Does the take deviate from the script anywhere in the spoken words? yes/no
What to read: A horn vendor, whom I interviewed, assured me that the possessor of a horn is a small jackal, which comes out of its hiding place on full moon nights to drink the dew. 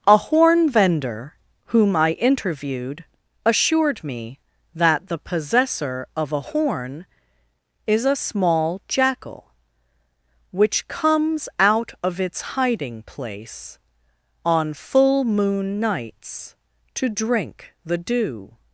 no